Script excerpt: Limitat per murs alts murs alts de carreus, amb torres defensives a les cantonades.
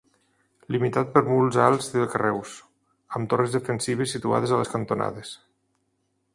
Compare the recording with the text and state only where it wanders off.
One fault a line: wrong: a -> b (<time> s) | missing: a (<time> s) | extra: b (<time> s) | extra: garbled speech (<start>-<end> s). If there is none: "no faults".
missing: murs alts (1.9 s)
extra: situades (4.1 s)